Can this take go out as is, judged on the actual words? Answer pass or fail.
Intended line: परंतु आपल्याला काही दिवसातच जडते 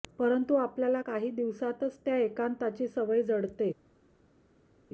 fail